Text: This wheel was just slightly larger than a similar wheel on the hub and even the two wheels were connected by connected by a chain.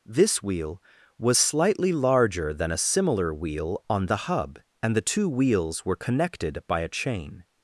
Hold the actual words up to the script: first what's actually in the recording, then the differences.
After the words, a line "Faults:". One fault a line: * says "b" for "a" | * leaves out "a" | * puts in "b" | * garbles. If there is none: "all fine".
This wheel was slightly larger than a similar wheel on the hub and the two wheels were connected by a chain.
Faults:
* leaves out "just"
* leaves out "even"
* leaves out "connected by"